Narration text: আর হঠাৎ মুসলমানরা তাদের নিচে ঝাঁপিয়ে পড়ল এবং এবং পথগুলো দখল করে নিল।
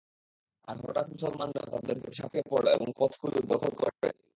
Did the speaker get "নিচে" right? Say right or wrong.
wrong